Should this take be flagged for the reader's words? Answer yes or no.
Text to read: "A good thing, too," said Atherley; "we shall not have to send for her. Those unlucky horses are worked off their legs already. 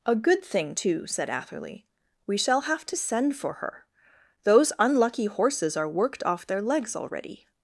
yes